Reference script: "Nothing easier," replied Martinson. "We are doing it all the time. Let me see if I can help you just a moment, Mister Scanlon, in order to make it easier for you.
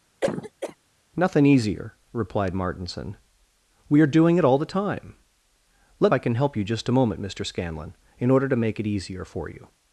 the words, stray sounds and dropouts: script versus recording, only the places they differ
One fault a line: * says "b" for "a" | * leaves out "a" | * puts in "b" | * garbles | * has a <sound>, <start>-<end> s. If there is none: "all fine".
* has a cough, 0.2-0.8 s
* leaves out "me see if"